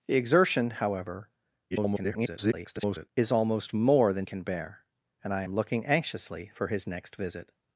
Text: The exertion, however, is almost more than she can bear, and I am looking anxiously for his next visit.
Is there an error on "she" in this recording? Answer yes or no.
yes